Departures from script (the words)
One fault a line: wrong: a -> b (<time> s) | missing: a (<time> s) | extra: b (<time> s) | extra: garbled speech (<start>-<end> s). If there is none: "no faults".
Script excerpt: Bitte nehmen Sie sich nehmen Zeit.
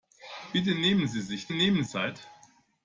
no faults